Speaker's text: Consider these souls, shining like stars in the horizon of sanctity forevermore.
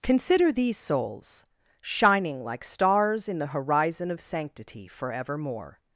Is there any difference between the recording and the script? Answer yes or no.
no